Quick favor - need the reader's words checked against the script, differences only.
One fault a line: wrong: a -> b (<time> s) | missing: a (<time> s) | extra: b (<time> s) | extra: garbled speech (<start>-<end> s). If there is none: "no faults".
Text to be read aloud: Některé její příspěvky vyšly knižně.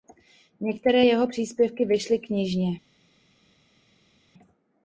wrong: její -> jeho (1.0 s)